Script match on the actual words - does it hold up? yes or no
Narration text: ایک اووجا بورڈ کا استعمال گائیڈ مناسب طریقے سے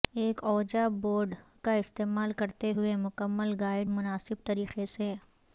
no